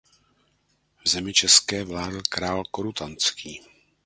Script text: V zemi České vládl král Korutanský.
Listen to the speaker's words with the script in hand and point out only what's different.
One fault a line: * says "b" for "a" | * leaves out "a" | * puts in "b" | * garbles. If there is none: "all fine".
all fine